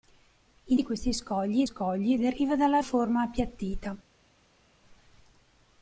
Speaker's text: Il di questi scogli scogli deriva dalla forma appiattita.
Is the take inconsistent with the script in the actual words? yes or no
no